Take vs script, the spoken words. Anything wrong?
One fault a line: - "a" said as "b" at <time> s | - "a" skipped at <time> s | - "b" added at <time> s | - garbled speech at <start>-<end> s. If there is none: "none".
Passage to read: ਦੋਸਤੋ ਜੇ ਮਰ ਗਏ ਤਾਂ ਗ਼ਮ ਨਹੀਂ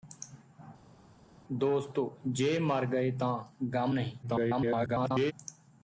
- garbled speech at 4.2-5.3 s